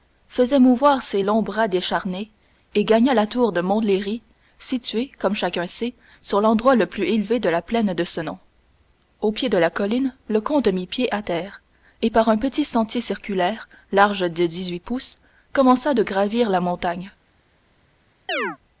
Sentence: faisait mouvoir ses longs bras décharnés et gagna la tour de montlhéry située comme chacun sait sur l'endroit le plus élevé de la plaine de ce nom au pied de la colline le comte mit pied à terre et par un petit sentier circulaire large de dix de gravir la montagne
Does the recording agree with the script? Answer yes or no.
no